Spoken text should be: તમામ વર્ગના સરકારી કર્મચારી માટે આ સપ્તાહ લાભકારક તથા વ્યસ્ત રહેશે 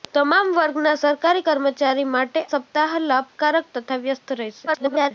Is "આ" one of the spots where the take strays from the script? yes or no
yes